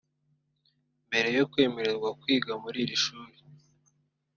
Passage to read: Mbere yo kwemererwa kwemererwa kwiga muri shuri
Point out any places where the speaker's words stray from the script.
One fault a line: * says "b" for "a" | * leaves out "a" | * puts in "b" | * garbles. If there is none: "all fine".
* leaves out "kwemererwa"
* puts in "iri"